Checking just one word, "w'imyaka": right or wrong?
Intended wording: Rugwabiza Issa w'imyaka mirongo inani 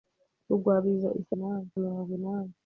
wrong